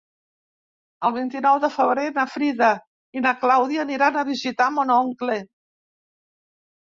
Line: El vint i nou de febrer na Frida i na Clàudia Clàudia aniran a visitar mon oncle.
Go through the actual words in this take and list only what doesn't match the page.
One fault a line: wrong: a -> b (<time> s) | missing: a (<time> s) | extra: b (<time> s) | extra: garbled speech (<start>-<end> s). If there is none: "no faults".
missing: Clàudia (3.8 s)